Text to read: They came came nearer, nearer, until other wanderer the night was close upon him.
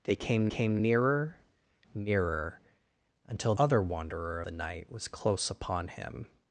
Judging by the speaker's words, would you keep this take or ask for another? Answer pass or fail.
pass